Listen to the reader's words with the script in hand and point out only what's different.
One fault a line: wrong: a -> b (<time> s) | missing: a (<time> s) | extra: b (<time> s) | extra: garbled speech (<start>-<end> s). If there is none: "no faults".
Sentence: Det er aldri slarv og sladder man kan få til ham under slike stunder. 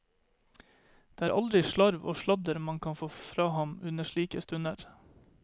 wrong: til -> fra (3.2 s)